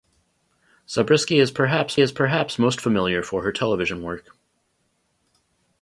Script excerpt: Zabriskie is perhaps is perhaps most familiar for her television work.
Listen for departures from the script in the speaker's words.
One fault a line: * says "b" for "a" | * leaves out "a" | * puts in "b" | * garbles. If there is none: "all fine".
all fine